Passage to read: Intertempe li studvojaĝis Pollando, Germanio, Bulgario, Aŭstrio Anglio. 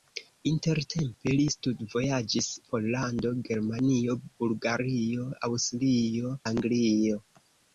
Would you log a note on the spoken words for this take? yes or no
no